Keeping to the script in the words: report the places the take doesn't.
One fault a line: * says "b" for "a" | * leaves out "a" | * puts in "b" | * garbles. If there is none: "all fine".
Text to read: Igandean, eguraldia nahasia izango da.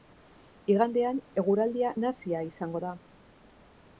all fine